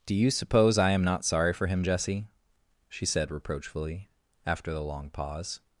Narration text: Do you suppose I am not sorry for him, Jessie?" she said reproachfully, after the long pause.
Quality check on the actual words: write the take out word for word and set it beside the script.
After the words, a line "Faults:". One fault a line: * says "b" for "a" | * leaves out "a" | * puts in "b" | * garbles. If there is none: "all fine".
Do you suppose I am not sorry for him, Jessie?" she said reproachfully, after the long pause.
Faults:
all fine